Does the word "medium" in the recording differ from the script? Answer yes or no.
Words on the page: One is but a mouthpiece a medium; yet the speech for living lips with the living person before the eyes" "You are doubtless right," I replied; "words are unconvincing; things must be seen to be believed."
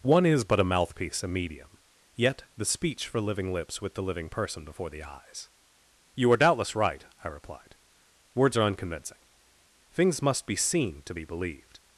no